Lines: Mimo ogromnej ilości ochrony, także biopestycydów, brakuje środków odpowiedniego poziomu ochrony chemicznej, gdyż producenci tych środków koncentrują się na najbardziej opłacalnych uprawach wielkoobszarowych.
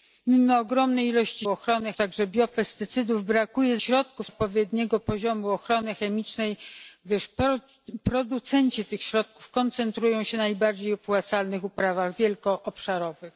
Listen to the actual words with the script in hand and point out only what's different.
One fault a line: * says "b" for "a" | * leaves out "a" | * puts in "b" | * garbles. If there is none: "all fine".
all fine